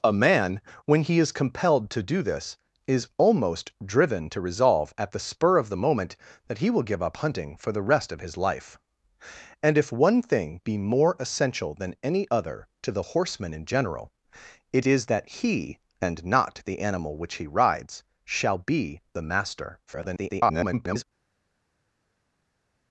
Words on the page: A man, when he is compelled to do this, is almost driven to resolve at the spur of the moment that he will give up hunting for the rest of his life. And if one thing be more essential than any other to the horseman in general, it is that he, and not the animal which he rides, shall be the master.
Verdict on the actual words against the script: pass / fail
fail